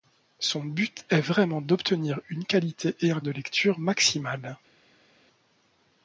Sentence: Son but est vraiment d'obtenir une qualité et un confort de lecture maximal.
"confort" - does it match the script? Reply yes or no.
no